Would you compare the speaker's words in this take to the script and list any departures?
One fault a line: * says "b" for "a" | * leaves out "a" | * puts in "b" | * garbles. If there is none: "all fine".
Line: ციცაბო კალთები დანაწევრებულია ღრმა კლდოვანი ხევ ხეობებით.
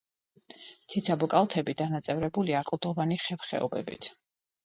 * leaves out "ღრმა"